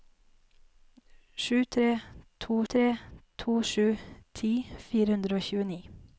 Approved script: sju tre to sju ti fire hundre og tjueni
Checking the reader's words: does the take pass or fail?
fail